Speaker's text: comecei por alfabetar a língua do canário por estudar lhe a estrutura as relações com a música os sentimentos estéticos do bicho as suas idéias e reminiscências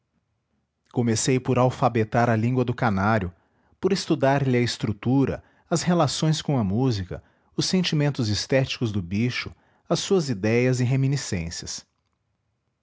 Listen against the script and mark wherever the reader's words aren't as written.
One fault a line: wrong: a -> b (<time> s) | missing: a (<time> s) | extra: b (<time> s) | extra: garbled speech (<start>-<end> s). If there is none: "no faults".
no faults